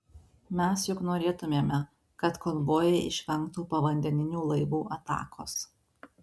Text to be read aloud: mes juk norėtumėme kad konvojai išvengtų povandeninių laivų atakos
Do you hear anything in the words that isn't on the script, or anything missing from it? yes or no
no